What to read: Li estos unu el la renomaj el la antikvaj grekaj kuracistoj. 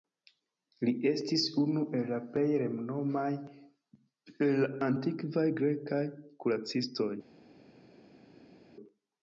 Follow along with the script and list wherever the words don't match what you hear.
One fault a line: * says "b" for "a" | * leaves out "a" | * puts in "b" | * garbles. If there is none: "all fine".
* says "estis" for "estos"
* puts in "plej"